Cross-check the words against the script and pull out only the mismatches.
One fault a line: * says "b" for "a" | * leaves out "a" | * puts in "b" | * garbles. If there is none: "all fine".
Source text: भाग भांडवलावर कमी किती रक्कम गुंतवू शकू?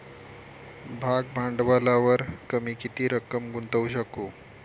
all fine